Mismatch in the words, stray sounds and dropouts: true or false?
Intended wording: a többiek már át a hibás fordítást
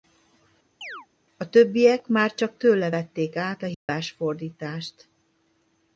true